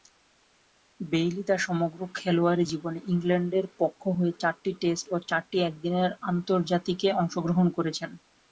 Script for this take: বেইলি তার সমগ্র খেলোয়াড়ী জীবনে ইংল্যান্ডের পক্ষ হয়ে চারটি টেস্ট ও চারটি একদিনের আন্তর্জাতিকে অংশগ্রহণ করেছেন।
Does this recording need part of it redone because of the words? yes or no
no